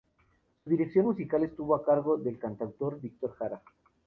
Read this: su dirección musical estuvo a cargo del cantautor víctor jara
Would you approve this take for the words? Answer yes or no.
yes